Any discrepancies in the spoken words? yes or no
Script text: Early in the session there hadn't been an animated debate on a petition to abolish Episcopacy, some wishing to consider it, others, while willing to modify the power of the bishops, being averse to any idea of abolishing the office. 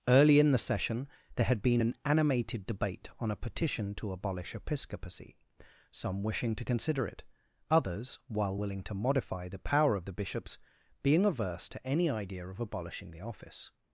yes